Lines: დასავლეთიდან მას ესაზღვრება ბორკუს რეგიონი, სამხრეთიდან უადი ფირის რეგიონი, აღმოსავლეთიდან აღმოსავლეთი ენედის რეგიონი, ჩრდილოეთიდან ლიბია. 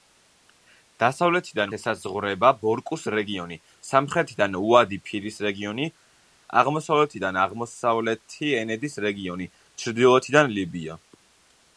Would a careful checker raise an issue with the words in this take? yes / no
yes